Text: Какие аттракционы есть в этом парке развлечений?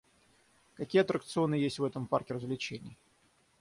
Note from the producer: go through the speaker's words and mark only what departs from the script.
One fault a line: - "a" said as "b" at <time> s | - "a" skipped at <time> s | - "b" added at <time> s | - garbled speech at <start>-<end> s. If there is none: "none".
none